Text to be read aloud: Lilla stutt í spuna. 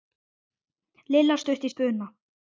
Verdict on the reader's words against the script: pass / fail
pass